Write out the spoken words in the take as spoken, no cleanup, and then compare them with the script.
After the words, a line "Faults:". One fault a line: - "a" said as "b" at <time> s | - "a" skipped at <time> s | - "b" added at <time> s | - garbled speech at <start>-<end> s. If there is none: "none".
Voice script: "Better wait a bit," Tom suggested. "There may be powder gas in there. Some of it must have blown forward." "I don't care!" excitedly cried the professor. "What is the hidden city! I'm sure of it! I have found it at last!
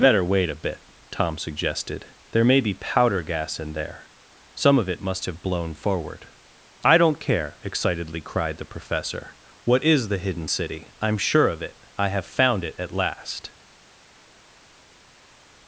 "Better wait a bit," Tom suggested. "There may be powder gas in there. Some of it must have blown forward." "I don't care!" excitedly cried the professor. "What is the hidden city! I'm sure of it! I have found it at last!
Faults:
none